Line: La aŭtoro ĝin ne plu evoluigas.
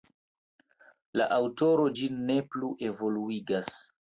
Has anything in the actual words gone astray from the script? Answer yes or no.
no